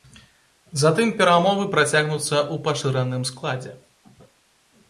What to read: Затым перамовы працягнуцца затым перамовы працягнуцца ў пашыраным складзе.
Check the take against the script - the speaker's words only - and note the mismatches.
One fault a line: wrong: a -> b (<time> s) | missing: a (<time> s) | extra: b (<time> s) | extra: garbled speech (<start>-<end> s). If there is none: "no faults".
missing: затым перамовы працягнуцца (2.3 s)